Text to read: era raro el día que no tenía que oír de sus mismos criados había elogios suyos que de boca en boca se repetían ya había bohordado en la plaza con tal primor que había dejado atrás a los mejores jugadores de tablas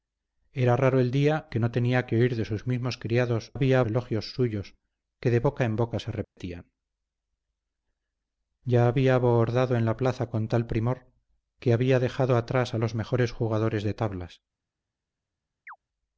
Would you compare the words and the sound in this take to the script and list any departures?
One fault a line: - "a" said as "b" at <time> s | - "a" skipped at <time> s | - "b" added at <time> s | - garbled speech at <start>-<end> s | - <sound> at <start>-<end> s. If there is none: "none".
- dropout at 6.2-6.4 s
- chirp at 15.7-15.8 s